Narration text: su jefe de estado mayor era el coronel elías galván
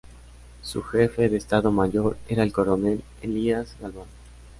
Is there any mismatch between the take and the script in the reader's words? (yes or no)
no